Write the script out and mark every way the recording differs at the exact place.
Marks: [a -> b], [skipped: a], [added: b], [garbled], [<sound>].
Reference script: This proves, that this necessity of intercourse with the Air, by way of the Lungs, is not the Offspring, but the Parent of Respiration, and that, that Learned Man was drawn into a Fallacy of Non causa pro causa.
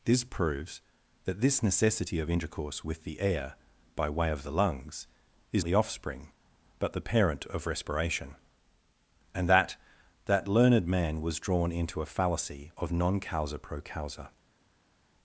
This proves, that this necessity of intercourse with the Air, by way of the Lungs, is [skipped: not] the Offspring, but the Parent of Respiration, and that, that Learned Man was drawn into a Fallacy of Non causa pro causa.